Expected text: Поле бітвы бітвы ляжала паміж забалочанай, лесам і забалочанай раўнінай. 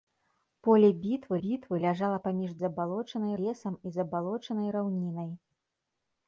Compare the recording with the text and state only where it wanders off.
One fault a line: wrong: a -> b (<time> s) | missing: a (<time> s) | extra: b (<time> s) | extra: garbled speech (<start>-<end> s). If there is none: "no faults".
no faults